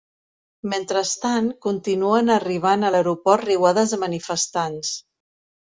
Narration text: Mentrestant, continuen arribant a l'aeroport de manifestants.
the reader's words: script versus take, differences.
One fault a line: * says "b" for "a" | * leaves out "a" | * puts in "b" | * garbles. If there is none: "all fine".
* puts in "riuades"